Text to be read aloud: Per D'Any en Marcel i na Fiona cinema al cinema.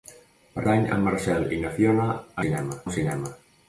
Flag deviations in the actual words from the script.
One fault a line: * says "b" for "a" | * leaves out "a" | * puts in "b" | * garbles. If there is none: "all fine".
all fine